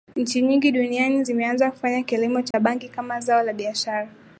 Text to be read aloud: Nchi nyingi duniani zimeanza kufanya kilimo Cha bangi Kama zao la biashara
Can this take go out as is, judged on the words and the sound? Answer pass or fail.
fail